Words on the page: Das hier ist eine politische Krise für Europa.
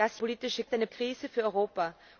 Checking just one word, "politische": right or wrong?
wrong